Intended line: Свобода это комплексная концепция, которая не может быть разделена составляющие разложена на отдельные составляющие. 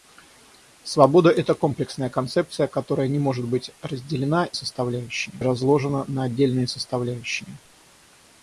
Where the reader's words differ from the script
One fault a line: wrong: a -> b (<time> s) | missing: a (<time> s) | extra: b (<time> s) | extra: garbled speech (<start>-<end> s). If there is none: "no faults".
no faults